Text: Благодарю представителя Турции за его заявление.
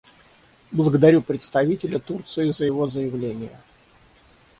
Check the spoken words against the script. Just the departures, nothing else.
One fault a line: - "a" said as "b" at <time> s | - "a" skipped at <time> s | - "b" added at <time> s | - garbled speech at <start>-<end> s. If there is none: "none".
none